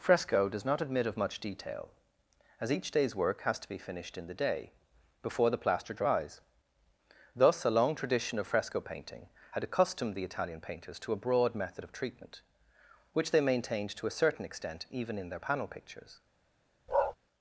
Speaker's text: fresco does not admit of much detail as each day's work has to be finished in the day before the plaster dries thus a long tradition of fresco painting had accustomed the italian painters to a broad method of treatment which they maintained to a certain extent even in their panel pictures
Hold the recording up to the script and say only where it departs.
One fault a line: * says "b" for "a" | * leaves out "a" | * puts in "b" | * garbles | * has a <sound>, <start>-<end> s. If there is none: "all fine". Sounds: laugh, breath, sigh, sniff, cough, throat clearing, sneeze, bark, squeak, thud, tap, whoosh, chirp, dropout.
* has a bark, 16.9-17.2 s